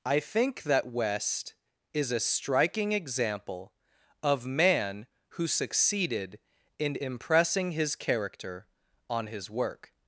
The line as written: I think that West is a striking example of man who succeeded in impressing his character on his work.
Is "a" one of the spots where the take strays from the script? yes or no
no